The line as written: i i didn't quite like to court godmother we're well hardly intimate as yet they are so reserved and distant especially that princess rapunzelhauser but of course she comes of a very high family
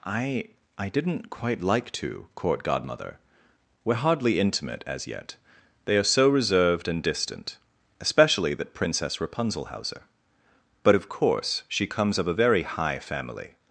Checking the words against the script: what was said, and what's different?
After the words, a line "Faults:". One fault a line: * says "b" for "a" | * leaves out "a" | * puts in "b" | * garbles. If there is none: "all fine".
i i didn't quite like to court godmother we're hardly intimate as yet they are so reserved and distant especially that princess rapunzelhauser but of course she comes of a very high family
Faults:
* leaves out "well"